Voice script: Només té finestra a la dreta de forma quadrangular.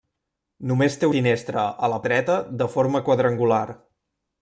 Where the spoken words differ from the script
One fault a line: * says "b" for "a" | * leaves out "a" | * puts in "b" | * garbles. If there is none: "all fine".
all fine